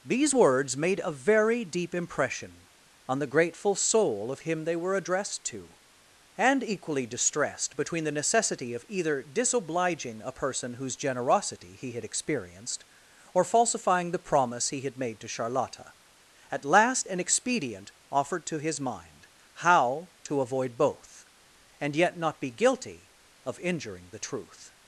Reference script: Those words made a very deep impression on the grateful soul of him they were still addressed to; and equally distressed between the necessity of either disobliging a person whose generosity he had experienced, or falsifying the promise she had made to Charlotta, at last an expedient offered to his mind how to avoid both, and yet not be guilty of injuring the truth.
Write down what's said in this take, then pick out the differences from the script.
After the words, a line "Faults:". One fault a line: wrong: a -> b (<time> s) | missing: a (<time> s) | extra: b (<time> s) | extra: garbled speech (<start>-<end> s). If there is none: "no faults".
These words made a very deep impression on the grateful soul of him they were addressed to; and equally distressed between the necessity of either disobliging a person whose generosity he had experienced, or falsifying the promise he had made to Charlotta, at last an expedient offered to his mind how to avoid both, and yet not be guilty of injuring the truth.
Faults:
wrong: Those -> These (0.0 s)
missing: still (4.9 s)
wrong: she -> he (14.7 s)